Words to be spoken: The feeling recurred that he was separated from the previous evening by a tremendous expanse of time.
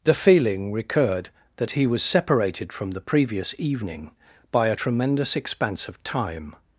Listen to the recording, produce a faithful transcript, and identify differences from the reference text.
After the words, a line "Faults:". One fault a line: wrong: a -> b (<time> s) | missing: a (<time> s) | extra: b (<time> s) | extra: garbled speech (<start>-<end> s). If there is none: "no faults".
The feeling recurred that he was separated from the previous evening by a tremendous expanse of time.
Faults:
no faults